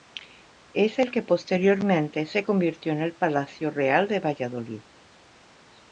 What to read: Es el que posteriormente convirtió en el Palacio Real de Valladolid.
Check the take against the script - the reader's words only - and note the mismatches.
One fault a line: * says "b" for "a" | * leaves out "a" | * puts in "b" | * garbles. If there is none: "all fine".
* puts in "se"